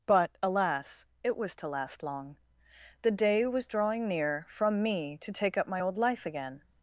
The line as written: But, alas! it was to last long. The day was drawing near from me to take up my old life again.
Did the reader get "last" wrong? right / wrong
right